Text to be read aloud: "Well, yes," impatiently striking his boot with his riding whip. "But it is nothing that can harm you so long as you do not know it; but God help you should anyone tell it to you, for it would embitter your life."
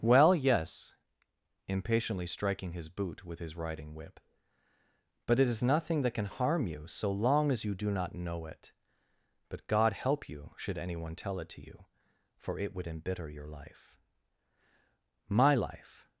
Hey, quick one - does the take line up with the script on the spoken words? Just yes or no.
no